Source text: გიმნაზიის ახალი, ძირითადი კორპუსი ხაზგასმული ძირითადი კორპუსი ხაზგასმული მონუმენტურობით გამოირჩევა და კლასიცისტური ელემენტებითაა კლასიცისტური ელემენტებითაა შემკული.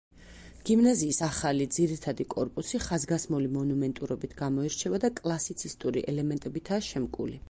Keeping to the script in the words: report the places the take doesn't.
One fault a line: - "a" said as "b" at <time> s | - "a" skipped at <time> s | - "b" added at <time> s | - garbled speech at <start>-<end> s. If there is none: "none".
- "ძირითადი კორპუსი ხაზგასმული" skipped at 3.5 s
- "კლასიცისტური ელემენტებითაა" skipped at 6.9 s